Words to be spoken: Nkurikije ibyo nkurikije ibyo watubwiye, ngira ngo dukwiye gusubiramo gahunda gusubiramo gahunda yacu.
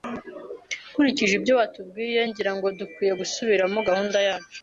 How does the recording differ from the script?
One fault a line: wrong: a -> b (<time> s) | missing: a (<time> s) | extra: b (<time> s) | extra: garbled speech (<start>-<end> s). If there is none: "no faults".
missing: nkurikije ibyo (1.5 s)
missing: gusubiramo gahunda (4.2 s)